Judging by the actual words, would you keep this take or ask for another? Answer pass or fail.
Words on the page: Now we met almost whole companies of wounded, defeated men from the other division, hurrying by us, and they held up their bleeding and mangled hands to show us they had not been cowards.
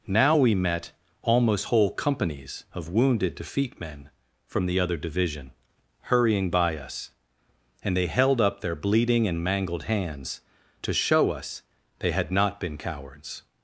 fail